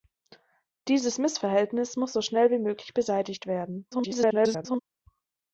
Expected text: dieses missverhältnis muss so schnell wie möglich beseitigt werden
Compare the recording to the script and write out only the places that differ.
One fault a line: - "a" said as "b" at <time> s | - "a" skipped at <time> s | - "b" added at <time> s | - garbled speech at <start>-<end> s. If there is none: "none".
- garbled speech at 3.9-4.8 s